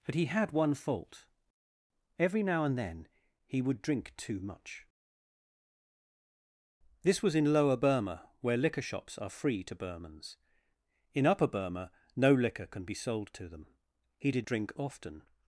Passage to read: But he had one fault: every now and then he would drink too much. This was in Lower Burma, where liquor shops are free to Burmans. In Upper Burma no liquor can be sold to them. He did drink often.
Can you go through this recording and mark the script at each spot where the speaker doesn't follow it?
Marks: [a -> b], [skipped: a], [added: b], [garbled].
But he had one fault: every now and then he would drink too much. This was in Lower Burma, where liquor shops are free to Burmans. In Upper Burma no liquor can be sold to them. He did drink often.